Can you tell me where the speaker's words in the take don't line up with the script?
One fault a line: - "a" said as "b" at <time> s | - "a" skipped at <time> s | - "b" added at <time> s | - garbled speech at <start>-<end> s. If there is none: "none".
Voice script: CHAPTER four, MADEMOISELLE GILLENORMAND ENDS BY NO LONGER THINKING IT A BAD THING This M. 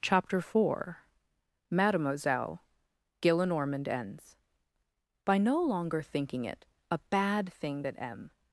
- "This" said as "THAT" at 7.8 s